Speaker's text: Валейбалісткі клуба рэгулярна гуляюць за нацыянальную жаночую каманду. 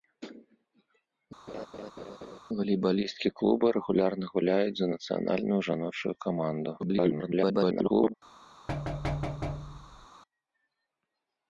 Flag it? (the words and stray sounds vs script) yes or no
yes